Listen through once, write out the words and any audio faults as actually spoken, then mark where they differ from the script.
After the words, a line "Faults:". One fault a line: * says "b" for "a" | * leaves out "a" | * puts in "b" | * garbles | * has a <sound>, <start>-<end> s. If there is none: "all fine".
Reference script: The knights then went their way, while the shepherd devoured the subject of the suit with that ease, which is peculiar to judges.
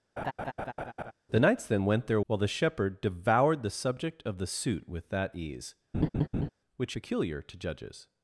The knights then went their while the shepherd devoured the subject of the suit with that ease, which peculiar to judges.
Faults:
* has a laugh, 0.2-1.1 s
* leaves out "way"
* has a laugh, 5.9-6.5 s
* leaves out "is"